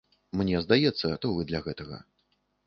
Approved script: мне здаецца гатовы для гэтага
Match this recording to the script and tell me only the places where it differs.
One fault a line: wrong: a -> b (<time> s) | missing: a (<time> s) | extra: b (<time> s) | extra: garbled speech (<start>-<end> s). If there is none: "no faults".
no faults